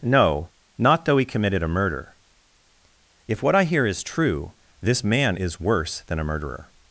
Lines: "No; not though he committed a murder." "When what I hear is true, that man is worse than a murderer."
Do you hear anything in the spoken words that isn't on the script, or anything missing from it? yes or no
yes